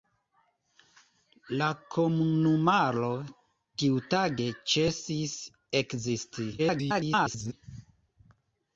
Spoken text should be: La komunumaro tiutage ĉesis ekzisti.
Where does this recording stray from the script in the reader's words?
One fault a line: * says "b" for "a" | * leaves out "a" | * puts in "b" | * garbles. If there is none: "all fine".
* garbles